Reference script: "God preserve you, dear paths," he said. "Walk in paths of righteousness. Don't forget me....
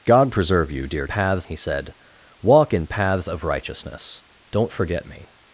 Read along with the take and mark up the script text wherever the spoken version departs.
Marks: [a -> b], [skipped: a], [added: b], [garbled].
"God preserve you, dear paths," he said. "Walk in paths of righteousness. Don't forget me....